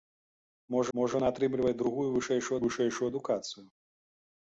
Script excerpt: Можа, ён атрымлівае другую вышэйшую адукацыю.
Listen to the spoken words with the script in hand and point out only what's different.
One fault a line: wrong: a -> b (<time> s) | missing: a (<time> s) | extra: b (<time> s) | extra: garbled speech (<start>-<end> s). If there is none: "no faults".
extra: можа (1.0 s)
extra: вышэйшую (2.6 s)